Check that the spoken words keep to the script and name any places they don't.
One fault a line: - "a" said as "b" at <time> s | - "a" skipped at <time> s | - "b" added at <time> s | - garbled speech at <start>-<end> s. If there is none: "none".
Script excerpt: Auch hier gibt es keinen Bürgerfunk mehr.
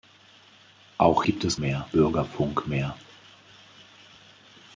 - "hier" skipped at 1.2 s
- "keinen" said as "mehr" at 1.6 s